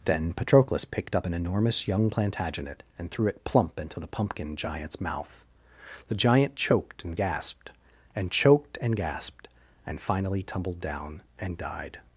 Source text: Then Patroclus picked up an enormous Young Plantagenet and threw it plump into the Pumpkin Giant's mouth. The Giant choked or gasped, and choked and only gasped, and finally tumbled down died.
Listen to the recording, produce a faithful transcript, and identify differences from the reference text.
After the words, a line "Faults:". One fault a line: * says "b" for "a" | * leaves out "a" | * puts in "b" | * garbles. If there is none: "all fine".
Then Patroclus picked up an enormous Young Plantagenet and threw it plump into the Pumpkin Giant's mouth. The Giant choked and gasped, and choked and gasped, and finally tumbled down and died.
Faults:
* says "and" for "or"
* leaves out "only"
* puts in "and"